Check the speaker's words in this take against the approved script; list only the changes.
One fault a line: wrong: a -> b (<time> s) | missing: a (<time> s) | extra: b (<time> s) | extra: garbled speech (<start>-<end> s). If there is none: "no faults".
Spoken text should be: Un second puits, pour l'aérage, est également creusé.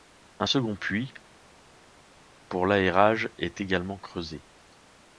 no faults